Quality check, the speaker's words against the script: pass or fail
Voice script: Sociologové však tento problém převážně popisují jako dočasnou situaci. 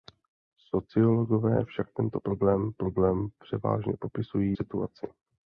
fail